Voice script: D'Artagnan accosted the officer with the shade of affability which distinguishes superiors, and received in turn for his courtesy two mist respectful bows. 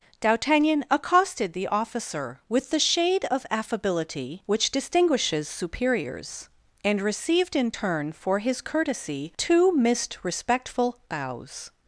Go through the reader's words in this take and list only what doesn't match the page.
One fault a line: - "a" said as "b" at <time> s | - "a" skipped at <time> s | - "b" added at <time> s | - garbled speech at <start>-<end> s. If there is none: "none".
none